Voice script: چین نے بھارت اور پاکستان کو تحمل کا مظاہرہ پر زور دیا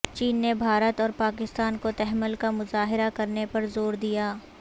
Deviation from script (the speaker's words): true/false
true